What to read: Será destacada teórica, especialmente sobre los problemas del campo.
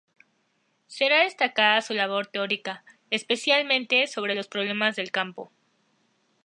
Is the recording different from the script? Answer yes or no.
yes